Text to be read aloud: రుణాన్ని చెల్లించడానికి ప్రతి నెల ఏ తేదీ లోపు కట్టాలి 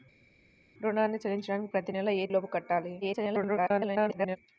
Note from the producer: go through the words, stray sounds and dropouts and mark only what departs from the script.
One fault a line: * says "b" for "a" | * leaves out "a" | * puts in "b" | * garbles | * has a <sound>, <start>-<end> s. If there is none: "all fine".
* leaves out "తేదీ"
* garbles